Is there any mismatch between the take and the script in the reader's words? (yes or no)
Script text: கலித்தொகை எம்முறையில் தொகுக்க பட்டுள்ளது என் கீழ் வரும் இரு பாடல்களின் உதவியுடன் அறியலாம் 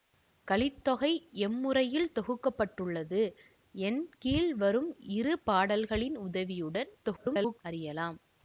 yes